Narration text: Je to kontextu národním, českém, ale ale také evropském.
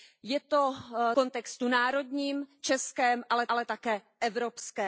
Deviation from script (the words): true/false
false